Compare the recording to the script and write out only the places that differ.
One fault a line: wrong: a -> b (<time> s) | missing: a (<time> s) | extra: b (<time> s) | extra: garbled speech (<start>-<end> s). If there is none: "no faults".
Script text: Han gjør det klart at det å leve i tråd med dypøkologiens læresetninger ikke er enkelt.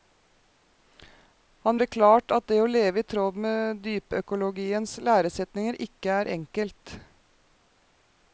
missing: gjør (1.8 s)